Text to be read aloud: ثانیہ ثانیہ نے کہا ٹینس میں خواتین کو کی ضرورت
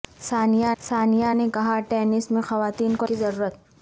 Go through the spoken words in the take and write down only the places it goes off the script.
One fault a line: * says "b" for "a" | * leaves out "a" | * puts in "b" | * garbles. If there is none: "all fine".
all fine